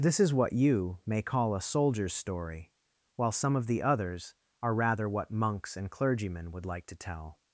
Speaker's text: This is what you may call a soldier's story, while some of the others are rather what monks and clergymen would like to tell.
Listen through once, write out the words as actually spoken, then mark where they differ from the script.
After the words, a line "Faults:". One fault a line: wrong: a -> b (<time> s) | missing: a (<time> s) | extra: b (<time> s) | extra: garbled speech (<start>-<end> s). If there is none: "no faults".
This is what you may call a soldier's story, while some of the others are rather what monks and clergymen would like to tell.
Faults:
no faults